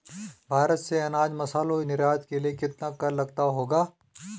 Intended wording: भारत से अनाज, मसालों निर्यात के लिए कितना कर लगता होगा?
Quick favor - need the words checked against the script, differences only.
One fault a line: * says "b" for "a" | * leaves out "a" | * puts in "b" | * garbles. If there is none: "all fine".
all fine